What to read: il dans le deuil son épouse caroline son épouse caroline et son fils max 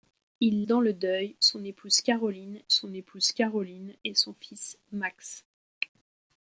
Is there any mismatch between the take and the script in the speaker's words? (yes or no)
no